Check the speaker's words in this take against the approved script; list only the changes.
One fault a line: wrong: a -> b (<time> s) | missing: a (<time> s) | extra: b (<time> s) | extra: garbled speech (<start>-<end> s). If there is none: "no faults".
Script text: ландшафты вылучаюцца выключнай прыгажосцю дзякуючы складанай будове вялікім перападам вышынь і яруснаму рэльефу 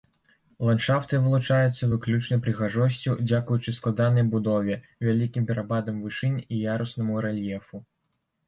no faults